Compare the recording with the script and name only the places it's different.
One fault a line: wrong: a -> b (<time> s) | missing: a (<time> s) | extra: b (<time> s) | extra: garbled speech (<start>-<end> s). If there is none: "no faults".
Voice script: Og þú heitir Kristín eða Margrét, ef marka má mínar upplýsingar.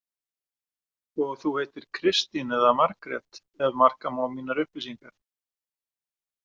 no faults